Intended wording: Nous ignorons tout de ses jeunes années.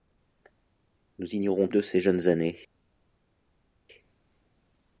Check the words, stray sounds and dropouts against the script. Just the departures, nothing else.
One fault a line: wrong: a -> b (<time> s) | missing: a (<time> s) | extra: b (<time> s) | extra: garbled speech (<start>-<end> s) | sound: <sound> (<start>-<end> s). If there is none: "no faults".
missing: tout (1.7 s)